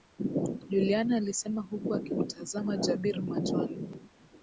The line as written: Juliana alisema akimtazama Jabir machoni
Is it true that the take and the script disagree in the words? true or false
true